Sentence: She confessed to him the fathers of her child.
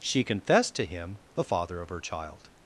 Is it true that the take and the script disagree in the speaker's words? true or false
true